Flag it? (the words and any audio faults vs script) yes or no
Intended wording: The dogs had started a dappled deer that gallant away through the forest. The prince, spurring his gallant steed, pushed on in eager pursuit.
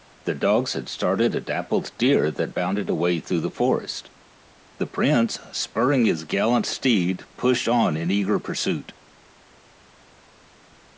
yes